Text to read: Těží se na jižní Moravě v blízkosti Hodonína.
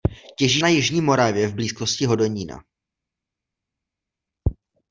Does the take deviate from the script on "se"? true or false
true